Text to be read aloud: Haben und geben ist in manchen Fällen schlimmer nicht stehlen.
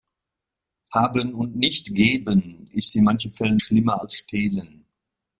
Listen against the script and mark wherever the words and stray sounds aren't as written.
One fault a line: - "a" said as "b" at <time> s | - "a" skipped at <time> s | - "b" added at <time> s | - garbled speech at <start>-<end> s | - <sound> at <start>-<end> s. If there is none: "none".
- "nicht" added at 1.6 s
- "nicht" said as "als" at 4.0 s